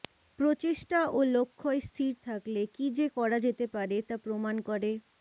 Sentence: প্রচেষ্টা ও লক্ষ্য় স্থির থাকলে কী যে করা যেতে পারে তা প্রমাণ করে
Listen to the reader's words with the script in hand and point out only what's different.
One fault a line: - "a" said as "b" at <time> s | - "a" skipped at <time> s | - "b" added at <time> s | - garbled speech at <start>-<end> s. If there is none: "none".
none